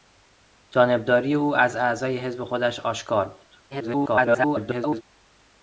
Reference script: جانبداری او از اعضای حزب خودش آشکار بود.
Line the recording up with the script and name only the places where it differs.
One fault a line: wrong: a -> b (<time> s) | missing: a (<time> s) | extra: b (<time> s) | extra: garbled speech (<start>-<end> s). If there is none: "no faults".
extra: garbled speech (3.7-5.0 s)